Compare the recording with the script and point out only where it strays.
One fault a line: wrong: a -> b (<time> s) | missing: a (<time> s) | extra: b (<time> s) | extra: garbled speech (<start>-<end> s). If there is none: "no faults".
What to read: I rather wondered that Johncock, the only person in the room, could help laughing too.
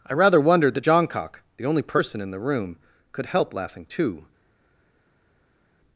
no faults